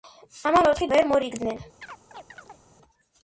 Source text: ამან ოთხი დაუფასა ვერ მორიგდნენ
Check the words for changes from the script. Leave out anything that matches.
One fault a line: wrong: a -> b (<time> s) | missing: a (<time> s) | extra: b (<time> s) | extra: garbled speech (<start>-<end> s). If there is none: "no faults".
missing: დაუფასა (0.9 s)